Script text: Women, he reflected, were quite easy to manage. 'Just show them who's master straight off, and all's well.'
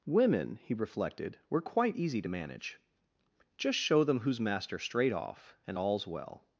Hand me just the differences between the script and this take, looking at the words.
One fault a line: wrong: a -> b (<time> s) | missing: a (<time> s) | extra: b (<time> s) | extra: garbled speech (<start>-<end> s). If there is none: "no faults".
no faults